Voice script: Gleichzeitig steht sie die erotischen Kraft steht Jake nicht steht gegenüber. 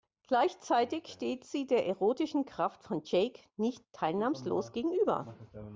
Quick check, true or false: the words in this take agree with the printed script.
false